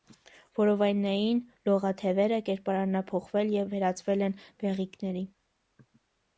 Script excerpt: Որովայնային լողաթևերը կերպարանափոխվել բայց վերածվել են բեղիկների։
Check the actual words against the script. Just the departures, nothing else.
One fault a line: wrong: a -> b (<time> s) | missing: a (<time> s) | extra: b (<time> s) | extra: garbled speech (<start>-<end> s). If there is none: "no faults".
wrong: բայց -> և (3.6 s)